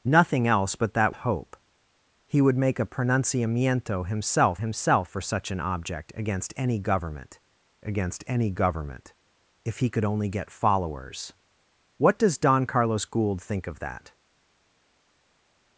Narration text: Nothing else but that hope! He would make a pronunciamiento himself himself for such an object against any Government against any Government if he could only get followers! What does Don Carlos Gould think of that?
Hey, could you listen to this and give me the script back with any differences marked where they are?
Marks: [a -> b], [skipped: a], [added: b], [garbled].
Nothing else but that hope! He would make a pronunciamiento himself himself for such an object against any Government against any Government if he could only get followers! What does Don Carlos Gould think of that?